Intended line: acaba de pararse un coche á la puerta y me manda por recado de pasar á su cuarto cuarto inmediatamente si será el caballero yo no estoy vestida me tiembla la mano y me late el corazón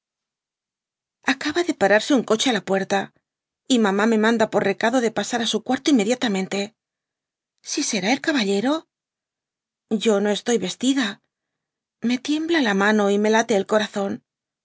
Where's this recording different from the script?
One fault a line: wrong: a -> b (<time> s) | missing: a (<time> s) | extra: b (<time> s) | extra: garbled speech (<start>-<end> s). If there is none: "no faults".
extra: mamá (3.9 s)
missing: cuarto (5.9 s)